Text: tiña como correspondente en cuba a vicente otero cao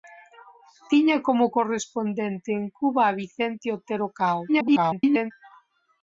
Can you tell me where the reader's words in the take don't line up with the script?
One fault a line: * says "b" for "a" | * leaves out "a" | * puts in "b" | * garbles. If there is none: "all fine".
* garbles